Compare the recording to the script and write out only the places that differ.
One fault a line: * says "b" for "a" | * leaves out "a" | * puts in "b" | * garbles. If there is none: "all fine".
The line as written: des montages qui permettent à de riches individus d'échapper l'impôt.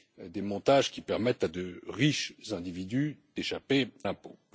all fine